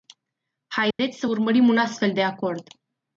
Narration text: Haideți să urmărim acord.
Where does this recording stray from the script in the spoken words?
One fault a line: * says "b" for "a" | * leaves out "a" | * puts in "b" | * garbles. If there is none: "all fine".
* puts in "un astfel de"